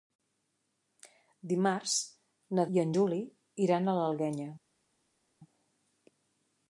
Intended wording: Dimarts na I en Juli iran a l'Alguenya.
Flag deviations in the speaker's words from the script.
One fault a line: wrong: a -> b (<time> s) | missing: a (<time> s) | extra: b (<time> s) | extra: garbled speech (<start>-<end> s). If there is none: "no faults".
no faults